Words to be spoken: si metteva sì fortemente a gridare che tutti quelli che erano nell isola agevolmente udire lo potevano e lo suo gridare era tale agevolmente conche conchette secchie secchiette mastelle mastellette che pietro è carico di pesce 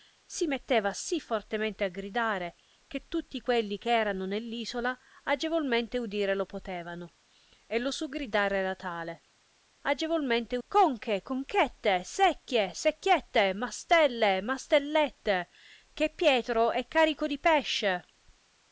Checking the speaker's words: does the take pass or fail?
pass